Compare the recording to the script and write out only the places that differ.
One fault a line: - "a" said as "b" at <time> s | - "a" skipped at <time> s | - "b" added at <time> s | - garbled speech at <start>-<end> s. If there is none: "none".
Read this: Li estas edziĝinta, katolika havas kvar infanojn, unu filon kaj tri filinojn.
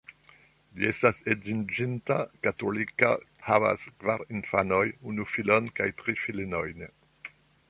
none